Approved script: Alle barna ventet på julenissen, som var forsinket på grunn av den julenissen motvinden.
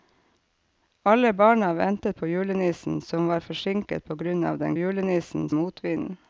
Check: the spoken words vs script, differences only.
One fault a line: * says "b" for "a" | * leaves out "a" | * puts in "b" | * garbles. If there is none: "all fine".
all fine